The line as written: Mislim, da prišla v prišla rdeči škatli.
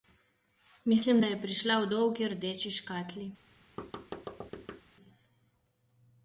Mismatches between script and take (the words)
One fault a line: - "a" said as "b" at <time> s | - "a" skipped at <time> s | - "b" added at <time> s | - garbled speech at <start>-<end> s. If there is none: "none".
- "je" added at 1.2 s
- "prišla" said as "dolgi" at 1.9 s